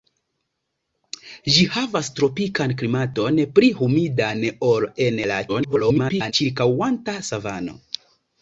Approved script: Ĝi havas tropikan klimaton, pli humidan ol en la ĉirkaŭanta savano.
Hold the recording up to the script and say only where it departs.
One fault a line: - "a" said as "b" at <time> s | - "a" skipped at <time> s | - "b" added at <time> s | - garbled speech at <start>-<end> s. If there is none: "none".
- garbled speech at 5.5-6.3 s